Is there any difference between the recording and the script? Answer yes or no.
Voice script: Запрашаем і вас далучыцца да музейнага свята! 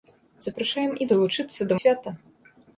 yes